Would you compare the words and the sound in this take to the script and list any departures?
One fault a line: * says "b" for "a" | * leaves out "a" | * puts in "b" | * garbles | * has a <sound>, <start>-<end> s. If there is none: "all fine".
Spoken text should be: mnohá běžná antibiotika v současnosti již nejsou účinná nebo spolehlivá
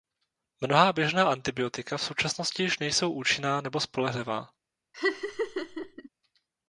* has a laugh, 4.9-6.1 s